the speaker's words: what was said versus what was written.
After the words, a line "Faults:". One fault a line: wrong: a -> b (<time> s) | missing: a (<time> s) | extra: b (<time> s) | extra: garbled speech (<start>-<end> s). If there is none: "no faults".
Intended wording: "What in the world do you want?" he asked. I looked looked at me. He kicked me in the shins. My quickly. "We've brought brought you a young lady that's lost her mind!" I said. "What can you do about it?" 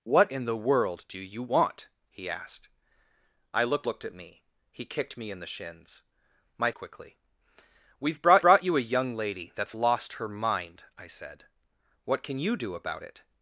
"What in the world do you want?" he asked. I looked looked at me. He kicked me in the shins. My quickly. "We've brought brought you a young lady that's lost her mind!" I said. "What can you do about it?"
Faults:
no faults